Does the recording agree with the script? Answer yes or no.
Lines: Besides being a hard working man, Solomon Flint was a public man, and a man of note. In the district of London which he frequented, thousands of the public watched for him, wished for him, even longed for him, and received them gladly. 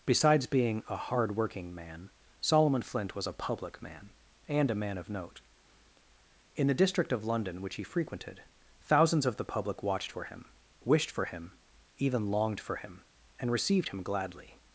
no